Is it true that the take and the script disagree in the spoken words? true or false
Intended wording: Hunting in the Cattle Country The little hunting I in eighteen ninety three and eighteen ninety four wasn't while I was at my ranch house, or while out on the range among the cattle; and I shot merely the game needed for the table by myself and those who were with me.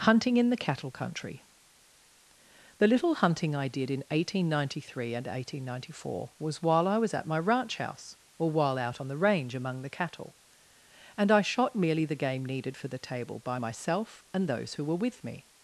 true